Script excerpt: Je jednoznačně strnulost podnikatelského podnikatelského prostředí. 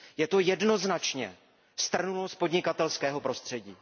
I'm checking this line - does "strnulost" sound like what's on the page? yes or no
yes